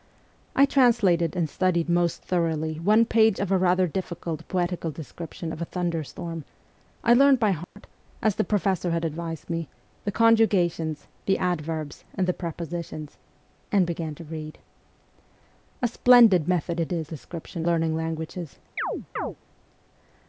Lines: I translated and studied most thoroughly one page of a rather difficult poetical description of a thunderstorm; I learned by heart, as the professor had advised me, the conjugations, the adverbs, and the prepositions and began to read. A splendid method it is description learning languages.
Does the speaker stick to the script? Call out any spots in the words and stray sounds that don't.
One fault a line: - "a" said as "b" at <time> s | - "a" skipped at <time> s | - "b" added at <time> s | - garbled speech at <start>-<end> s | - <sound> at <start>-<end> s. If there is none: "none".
- dropout at 7.6-7.8 s
- chirp at 18.8-19.4 s